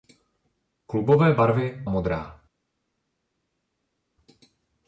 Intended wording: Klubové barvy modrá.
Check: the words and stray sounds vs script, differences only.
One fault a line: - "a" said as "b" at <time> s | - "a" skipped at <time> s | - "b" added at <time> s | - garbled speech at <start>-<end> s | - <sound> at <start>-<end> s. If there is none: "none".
none